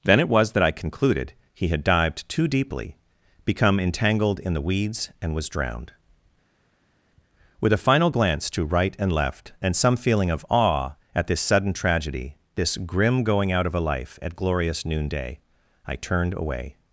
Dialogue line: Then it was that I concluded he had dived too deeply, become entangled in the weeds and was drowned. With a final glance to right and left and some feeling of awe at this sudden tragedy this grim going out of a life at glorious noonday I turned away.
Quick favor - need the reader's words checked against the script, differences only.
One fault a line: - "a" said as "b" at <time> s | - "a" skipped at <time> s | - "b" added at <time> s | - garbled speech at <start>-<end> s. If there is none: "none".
none